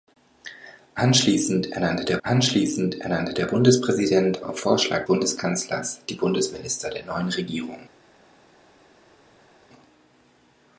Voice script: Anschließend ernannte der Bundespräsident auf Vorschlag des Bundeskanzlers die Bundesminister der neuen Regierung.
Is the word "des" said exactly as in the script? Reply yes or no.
no